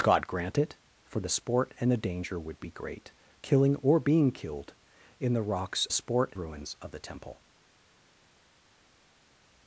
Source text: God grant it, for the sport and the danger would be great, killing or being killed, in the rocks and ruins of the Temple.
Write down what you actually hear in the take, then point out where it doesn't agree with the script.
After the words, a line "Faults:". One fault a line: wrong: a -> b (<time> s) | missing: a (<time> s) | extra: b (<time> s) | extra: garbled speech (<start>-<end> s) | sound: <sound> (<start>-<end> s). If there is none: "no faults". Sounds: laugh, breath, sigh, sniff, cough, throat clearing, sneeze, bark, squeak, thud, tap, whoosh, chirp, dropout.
God grant it, for the sport and the danger would be great, killing or being killed, in the rocks sport ruins of the Temple.
Faults:
wrong: and -> sport (5.9 s)